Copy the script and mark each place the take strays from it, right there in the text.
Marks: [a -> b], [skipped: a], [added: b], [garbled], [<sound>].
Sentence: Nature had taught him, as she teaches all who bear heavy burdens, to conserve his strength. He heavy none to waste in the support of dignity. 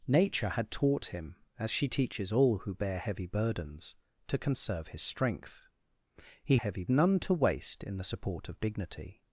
Nature had taught him, as she teaches all who bear heavy burdens, to conserve his strength. He heavy none to waste in the support of dignity.